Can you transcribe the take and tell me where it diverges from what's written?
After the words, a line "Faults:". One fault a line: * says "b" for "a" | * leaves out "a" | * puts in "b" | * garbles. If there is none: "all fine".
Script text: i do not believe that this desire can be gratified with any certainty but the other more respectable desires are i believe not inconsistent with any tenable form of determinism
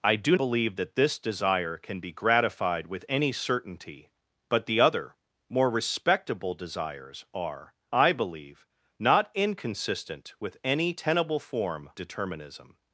i do believe that this desire can be gratified with any certainty but the other more respectable desires are i believe not inconsistent with any tenable form determinism
Faults:
* leaves out "not"
* leaves out "of"